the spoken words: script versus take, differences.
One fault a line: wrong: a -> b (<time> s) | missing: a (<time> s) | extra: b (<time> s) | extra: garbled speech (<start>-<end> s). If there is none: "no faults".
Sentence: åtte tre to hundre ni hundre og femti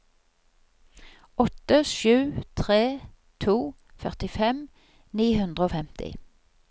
extra: sju (1.9 s)
wrong: hundre -> førtifem (4.1 s)